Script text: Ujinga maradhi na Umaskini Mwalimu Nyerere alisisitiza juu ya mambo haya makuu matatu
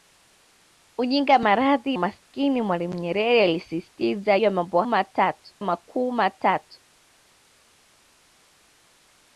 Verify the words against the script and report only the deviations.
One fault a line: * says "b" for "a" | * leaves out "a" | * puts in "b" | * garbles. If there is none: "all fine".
* leaves out "na"
* leaves out "juu"
* says "matatu" for "haya"